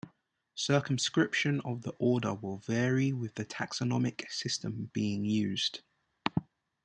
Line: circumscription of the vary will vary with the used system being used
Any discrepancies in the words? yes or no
yes